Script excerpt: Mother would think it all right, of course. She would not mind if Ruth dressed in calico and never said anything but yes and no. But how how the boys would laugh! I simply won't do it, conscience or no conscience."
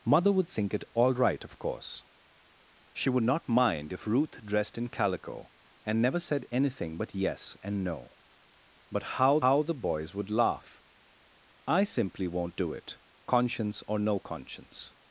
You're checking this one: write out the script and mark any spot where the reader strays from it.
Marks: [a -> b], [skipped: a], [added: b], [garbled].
Mother would think it all right, of course. She would not mind if Ruth dressed in calico and never said anything but yes and no. But how how the boys would laugh! I simply won't do it, conscience or no conscience."